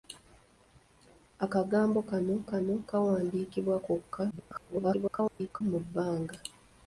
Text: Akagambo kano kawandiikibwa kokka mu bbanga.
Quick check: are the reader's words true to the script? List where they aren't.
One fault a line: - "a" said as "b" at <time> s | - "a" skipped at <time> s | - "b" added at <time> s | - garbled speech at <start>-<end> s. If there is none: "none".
- "kano" added at 2.5 s
- garbled speech at 4.3-5.6 s